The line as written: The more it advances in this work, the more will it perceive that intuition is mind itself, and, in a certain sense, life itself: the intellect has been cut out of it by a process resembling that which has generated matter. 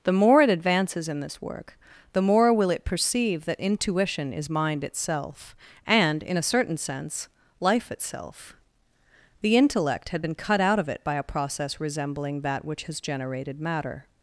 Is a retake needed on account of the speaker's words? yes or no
yes